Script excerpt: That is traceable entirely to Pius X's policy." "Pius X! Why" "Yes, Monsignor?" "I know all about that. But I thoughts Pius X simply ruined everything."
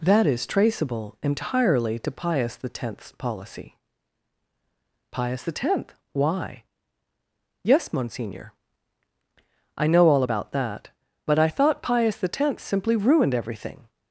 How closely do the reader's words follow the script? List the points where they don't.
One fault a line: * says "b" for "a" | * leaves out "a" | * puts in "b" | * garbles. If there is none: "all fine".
* says "thought" for "thoughts"